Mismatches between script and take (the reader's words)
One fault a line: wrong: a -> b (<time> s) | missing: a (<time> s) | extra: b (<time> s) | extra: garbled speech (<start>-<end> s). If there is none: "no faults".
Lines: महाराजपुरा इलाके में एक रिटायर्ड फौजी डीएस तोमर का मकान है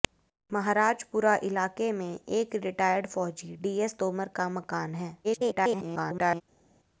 extra: garbled speech (5.2-6.4 s)